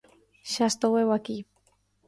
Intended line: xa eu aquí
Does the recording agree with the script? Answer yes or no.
no